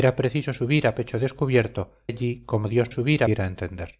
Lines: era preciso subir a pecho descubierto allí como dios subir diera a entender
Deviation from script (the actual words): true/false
false